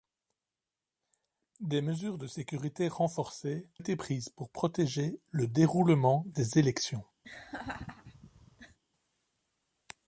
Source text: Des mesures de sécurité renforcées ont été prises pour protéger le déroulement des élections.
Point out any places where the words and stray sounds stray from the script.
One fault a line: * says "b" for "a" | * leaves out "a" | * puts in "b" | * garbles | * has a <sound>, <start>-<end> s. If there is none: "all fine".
* leaves out "ont"
* has a laugh, 7.2-8.8 s